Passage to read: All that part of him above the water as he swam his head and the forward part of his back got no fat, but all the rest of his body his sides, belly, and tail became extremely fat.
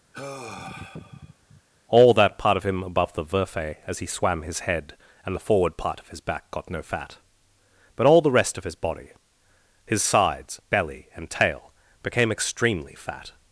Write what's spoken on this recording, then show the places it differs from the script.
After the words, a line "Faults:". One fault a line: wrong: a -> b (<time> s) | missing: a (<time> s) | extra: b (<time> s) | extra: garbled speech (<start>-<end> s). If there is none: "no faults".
All that part of him above the verfe as he swam his head and the forward part of his back got no fat, but all the rest of his body his sides, belly, and tail became extremely fat.
Faults:
wrong: water -> verfe (3.2 s)